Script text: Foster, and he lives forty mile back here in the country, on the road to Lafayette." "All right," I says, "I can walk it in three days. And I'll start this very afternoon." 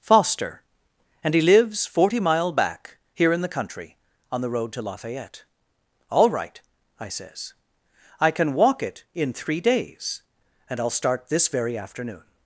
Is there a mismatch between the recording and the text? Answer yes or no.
no